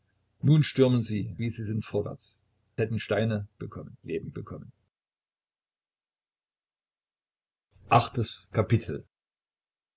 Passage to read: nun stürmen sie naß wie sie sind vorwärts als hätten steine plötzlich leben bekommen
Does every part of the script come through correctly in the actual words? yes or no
no